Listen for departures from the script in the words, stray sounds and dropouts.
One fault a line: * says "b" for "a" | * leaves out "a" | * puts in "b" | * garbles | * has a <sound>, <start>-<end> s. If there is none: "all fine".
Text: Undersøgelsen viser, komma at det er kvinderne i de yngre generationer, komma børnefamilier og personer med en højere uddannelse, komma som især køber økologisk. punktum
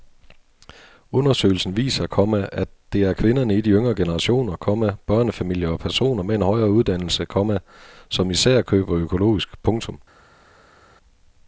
all fine